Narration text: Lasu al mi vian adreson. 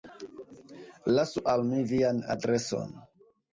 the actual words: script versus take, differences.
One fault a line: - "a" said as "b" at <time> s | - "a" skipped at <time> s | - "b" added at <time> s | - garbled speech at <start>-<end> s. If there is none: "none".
none